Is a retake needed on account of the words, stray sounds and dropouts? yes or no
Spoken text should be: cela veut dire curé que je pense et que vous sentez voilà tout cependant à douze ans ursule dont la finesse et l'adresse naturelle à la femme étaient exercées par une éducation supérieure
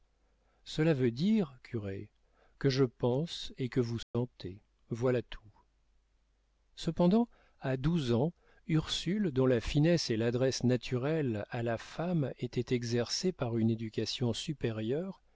yes